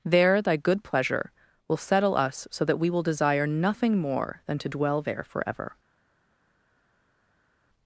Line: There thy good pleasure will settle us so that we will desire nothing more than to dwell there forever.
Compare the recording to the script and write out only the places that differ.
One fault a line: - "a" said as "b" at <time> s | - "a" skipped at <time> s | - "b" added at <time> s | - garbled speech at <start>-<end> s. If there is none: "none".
none